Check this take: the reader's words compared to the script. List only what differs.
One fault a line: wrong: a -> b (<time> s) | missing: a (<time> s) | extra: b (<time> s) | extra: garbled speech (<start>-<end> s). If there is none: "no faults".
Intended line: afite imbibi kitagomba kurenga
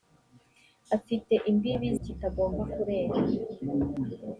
no faults